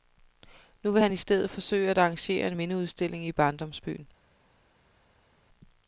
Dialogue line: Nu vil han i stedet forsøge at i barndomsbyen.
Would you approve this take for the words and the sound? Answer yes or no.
no